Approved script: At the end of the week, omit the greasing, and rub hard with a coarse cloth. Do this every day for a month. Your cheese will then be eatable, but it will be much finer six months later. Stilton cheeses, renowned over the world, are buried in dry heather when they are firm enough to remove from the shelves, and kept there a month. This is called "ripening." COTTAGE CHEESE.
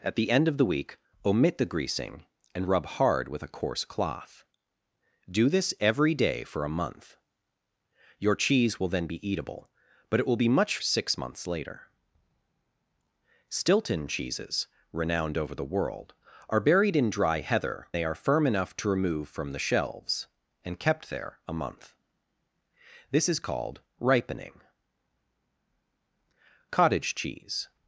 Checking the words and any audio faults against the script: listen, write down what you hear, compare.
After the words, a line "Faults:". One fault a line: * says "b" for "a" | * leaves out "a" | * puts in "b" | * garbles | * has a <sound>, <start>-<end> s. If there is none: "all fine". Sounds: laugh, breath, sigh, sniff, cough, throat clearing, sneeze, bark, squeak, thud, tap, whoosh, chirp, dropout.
At the end of the week, omit the greasing, and rub hard with a coarse cloth. Do this every day for a month. Your cheese will then be eatable, but it will be much six months later. Stilton cheeses, renowned over the world, are buried in dry heather they are firm enough to remove from the shelves, and kept there a month. This is called "ripening." COTTAGE CHEESE.
Faults:
* leaves out "finer"
* leaves out "when"